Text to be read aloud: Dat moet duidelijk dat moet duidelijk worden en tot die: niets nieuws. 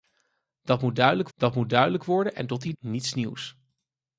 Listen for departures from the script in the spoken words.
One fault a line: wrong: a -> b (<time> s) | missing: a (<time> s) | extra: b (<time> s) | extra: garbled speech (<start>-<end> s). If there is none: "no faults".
no faults